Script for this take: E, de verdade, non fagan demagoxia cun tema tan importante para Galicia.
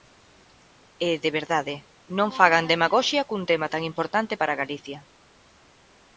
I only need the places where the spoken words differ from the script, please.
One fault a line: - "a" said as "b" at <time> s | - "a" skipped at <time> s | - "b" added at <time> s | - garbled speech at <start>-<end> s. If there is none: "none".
none